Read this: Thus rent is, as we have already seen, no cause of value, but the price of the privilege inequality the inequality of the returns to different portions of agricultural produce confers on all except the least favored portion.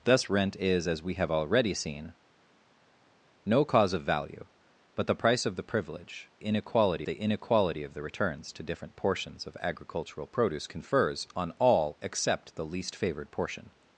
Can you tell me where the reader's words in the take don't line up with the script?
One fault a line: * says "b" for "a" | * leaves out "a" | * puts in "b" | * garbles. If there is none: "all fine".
all fine